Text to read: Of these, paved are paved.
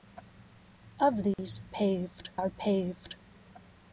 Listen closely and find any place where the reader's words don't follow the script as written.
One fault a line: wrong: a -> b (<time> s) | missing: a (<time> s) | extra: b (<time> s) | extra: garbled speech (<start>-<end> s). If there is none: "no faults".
no faults